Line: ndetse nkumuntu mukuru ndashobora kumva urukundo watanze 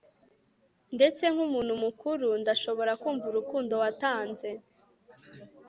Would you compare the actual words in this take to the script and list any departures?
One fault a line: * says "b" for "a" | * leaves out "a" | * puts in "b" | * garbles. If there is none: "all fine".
all fine